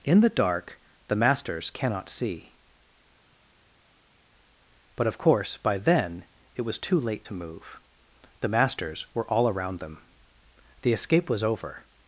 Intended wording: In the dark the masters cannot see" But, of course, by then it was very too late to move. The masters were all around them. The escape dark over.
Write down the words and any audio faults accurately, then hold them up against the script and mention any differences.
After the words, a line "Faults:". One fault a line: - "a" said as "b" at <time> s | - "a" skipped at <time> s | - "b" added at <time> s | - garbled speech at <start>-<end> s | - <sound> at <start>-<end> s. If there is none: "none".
In the dark the masters cannot see" But, of course, by then it was too late to move. The masters were all around them. The escape was over.
Faults:
- "very" skipped at 6.8 s
- "dark" said as "was" at 11.3 s